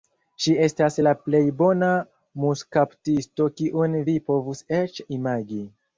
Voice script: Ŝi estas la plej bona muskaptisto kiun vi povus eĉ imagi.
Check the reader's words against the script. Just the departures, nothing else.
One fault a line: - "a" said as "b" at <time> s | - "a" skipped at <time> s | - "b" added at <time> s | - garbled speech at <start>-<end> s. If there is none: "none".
none